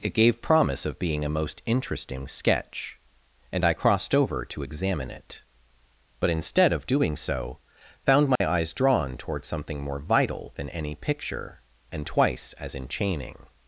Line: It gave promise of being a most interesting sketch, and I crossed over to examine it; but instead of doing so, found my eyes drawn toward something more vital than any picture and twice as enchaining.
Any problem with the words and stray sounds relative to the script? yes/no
yes